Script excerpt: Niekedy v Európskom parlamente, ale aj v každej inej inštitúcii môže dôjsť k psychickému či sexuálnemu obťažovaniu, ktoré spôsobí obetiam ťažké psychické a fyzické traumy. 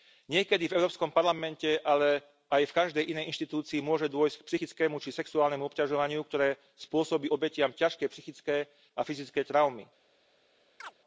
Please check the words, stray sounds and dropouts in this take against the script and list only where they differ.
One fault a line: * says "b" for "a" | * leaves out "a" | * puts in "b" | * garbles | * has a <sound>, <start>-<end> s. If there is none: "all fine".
* has a chirp, 10.8-10.9 s